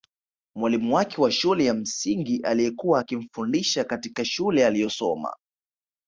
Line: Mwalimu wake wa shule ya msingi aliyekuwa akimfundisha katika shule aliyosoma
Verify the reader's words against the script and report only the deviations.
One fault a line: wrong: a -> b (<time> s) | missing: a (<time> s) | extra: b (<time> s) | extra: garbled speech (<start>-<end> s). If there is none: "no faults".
no faults